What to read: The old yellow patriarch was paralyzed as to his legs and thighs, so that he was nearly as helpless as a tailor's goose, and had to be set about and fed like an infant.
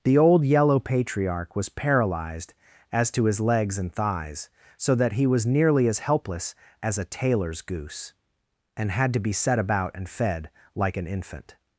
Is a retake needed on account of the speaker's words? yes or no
no